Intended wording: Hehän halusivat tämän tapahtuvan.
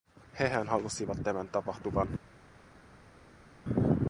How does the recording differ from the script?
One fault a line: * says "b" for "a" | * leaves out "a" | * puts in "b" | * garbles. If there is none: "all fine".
all fine